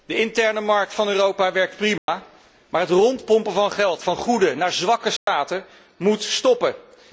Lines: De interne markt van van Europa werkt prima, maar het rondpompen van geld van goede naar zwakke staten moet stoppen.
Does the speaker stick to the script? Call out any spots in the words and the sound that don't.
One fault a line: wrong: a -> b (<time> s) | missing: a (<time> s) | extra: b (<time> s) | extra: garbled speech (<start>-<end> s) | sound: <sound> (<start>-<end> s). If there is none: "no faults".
missing: van (1.1 s)
sound: dropout (2.0-2.1 s)
sound: dropout (5.2-5.3 s)